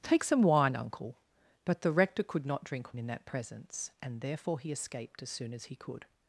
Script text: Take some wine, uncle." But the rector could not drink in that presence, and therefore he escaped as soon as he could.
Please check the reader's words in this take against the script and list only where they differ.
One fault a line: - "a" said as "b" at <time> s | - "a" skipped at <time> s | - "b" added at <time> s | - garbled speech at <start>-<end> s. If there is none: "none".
none